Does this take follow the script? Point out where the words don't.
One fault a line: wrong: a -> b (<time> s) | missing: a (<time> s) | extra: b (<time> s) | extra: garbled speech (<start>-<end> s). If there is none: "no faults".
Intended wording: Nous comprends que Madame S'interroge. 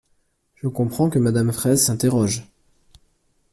wrong: Nous -> Je (0.6 s)
extra: Fraysse (1.5 s)